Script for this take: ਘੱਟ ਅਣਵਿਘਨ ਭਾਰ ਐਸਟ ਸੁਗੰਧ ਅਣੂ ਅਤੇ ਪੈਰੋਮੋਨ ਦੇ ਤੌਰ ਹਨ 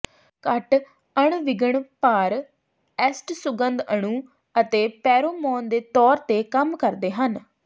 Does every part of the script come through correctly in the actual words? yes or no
no